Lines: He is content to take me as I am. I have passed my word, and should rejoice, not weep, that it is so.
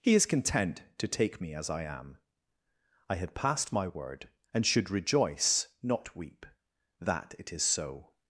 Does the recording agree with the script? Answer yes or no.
no